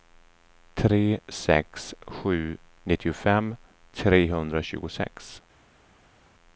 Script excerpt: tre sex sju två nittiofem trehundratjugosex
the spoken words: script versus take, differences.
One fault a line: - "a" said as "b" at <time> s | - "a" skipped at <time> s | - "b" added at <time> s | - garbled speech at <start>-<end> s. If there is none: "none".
- "två" skipped at 2.6 s